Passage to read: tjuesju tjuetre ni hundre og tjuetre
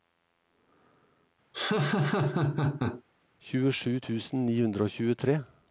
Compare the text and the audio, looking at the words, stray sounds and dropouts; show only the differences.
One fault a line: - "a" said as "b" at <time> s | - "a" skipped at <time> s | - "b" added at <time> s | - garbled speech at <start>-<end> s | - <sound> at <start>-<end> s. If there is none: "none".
- laugh at 1.5-3.0 s
- "tjuetre" said as "tusen" at 4.0 s